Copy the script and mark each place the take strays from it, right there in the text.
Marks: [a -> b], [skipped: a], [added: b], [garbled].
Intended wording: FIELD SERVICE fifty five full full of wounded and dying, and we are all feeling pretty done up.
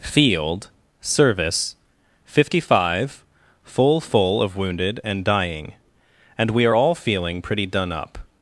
FIELD SERVICE fifty five full full of wounded and dying, and we are all feeling pretty done up.